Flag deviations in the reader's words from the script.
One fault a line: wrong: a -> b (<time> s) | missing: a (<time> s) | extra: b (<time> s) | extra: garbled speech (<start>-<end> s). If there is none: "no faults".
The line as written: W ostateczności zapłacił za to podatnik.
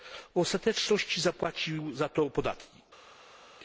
no faults